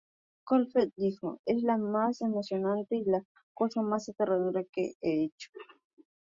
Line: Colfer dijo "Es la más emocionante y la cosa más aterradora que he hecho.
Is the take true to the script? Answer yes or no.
yes